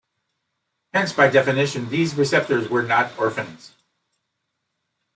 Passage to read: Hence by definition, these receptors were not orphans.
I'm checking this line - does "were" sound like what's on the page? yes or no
yes